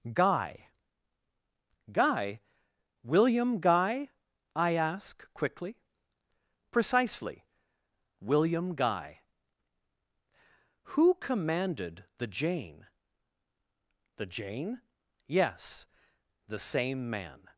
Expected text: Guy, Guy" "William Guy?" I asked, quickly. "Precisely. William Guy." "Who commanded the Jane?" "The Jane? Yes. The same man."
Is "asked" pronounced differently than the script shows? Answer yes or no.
yes